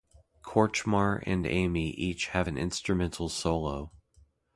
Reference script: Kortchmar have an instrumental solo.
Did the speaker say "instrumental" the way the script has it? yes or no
yes